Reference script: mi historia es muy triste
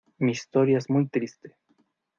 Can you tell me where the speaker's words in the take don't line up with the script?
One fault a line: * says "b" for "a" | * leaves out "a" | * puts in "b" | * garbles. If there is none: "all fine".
all fine